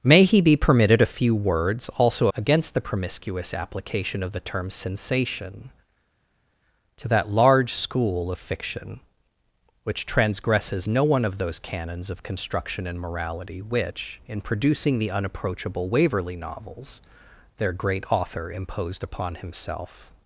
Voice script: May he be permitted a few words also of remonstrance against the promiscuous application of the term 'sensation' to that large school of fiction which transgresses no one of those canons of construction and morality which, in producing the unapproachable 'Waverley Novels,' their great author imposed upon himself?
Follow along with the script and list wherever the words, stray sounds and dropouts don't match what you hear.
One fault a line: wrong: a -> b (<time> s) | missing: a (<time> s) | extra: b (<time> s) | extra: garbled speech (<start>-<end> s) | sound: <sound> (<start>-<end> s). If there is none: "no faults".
missing: of remonstrance (2.3 s)